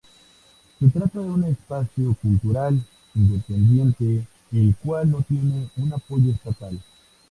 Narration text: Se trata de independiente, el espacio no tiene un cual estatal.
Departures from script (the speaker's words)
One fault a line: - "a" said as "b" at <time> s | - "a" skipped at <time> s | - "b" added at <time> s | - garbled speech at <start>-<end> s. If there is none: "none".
- "un espacio cultural" added at 1.2 s
- "espacio" said as "cual" at 4.8 s
- "cual" said as "apoyo" at 5.9 s